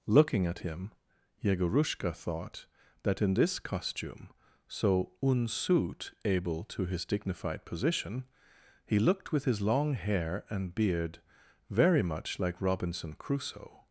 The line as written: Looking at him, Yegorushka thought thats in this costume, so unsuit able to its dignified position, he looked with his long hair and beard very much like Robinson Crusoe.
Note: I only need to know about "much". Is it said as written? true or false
true